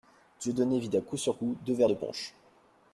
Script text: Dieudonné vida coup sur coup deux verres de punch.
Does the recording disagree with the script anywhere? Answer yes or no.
no